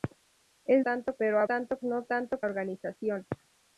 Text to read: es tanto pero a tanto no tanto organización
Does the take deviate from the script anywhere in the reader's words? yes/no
no